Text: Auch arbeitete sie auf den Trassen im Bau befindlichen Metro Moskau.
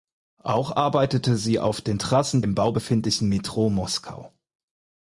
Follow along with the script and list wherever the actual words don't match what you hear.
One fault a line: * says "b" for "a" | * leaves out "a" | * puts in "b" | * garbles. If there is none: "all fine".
all fine